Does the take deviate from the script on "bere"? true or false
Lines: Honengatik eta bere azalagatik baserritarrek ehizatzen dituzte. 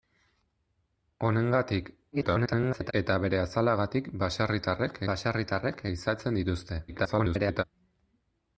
false